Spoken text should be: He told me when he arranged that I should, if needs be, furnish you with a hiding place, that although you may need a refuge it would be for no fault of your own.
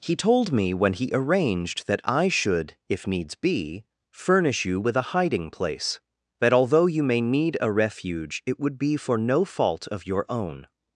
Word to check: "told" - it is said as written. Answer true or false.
true